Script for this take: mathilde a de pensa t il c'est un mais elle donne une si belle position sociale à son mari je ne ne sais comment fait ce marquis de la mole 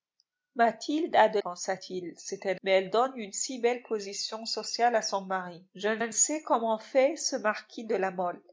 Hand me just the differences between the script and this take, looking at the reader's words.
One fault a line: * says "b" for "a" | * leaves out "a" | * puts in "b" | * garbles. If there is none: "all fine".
all fine